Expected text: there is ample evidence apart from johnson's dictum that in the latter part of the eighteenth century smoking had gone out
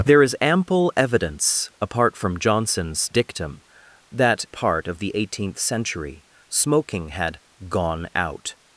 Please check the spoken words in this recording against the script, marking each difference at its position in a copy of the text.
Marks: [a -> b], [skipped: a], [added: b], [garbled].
there is ample evidence apart from johnson's dictum that [skipped: in the latter] part of the eighteenth century smoking had gone out